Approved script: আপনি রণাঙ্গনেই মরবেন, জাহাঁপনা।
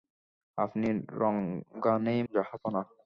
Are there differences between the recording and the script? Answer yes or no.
yes